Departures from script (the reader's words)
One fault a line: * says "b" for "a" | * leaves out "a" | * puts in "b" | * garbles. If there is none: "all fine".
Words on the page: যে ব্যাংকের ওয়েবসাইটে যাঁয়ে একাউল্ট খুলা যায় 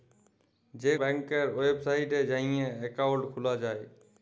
all fine